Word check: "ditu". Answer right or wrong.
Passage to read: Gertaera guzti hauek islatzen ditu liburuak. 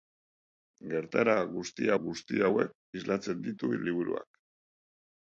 right